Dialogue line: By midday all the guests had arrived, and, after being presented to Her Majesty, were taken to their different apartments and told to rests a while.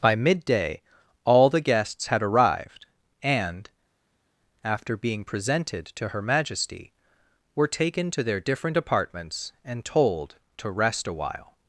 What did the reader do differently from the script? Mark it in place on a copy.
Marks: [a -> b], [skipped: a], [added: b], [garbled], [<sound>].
By midday all the guests had arrived, and, after being presented to Her Majesty, were taken to their different apartments and told to [rests -> rest] a while.